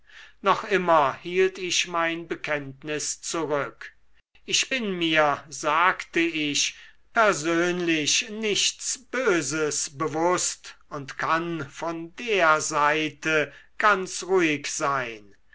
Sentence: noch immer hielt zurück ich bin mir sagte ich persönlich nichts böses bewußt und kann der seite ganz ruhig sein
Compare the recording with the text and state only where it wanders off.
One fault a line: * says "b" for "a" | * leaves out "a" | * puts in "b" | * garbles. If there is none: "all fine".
* puts in "ich mein bekenntnis"
* puts in "von"